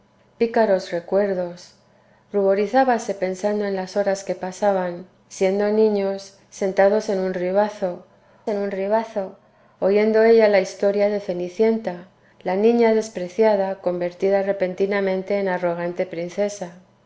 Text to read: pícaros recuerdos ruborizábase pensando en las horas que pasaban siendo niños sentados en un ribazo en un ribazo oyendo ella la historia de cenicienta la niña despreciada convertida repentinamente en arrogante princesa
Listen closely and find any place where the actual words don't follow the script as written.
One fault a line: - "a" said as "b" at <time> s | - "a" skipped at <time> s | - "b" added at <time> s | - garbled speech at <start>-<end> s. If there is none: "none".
none